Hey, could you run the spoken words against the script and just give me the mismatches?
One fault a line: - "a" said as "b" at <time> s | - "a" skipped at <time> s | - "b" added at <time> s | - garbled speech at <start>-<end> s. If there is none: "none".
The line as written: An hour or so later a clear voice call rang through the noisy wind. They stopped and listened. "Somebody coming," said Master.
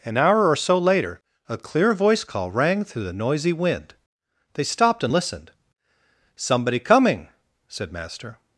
none